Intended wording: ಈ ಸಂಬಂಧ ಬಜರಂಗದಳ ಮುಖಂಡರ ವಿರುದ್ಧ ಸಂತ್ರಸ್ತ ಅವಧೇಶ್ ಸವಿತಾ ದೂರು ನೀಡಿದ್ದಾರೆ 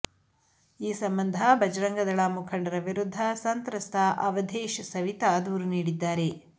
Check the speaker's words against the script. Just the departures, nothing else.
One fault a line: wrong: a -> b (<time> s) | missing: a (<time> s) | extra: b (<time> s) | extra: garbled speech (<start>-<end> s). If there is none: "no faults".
no faults